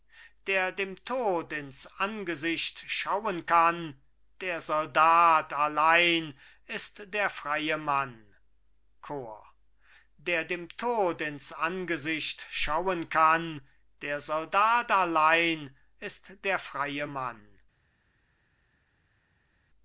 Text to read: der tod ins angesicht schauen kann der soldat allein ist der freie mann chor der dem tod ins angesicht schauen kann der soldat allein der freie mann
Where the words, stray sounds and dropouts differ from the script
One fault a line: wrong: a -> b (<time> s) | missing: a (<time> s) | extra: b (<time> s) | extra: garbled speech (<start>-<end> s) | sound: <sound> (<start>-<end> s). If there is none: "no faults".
extra: dem (0.7 s)
extra: ist (16.0 s)